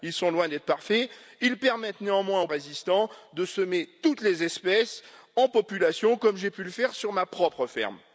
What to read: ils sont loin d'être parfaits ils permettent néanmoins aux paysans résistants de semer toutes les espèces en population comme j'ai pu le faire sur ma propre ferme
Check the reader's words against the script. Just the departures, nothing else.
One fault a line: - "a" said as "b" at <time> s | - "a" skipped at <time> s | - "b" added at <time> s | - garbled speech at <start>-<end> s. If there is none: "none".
- "paysans" skipped at 2.5 s